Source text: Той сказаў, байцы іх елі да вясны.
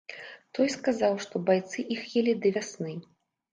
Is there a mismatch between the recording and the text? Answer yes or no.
yes